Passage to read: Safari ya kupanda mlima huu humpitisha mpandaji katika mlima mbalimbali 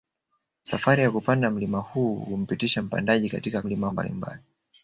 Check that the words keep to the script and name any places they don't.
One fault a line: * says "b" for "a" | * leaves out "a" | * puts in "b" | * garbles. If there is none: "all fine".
all fine